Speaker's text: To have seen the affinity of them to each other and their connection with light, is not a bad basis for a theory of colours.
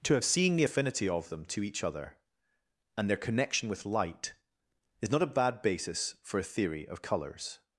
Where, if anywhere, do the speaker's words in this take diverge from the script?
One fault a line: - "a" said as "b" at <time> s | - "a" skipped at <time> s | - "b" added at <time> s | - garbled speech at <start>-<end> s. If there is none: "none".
none